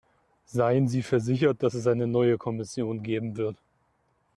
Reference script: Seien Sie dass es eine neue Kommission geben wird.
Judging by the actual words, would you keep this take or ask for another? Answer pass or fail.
fail